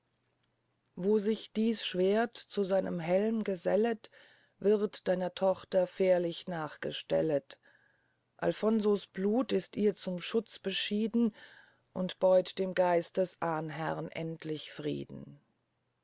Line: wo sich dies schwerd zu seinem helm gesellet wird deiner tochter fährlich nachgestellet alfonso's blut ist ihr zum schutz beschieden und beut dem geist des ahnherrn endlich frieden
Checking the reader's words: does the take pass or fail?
pass